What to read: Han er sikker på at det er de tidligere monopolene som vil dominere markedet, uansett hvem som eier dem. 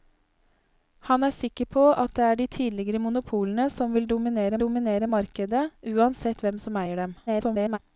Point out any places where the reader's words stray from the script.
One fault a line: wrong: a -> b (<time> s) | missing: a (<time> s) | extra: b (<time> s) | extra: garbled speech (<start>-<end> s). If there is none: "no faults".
extra: dominere (4.7 s)
extra: garbled speech (7.3-7.8 s)